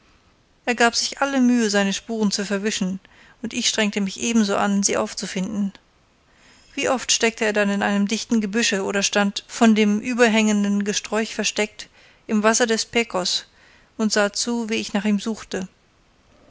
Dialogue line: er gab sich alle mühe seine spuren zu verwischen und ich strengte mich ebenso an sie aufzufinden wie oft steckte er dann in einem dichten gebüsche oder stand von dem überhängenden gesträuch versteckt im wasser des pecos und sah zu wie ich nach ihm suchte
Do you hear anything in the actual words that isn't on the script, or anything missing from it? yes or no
no